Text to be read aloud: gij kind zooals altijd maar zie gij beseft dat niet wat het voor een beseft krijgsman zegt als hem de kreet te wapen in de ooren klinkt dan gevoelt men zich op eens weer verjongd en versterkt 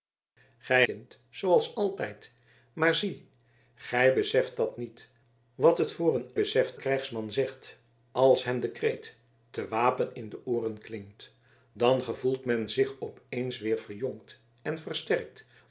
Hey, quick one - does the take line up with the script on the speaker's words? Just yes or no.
yes